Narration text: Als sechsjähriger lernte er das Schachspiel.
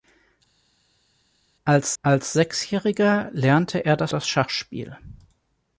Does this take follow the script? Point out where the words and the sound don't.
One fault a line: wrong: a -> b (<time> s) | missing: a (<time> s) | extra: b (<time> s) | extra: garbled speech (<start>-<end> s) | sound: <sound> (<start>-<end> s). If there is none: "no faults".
extra: als (2.0 s)
extra: das (4.1 s)